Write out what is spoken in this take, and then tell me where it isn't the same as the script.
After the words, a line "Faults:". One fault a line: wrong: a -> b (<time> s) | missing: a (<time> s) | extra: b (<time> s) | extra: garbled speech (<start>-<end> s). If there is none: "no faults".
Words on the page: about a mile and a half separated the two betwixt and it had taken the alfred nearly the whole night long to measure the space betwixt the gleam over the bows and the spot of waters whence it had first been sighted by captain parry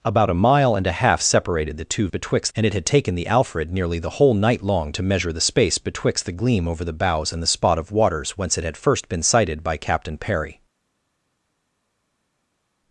about a mile and a half separated the two betwixt and it had taken the alfred nearly the whole night long to measure the space betwixt the gleam over the bows and the spot of waters whence it had first been sighted by captain parry
Faults:
no faults